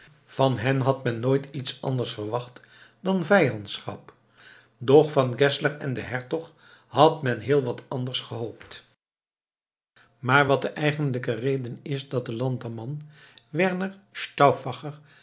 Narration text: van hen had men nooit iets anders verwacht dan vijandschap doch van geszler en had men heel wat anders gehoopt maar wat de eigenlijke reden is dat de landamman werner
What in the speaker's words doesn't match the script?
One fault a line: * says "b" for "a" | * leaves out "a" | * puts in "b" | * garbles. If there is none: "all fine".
* puts in "den hertog"